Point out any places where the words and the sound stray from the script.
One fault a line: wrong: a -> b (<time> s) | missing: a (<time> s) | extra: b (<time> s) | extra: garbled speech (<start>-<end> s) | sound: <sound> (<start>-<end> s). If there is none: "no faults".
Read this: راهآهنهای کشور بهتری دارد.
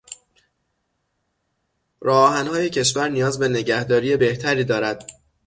extra: نیاز به نگهداری (3.1 s)